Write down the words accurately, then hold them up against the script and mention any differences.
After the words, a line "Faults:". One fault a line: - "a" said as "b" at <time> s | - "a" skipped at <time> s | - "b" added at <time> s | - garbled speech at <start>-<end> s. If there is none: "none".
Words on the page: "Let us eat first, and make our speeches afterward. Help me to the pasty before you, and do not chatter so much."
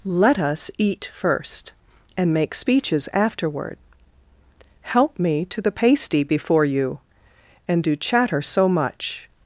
"Let us eat first, and make speeches afterward. Help me to the pasty before you, and do chatter so much."
Faults:
- "our" skipped at 2.5 s
- "not" skipped at 8.0 s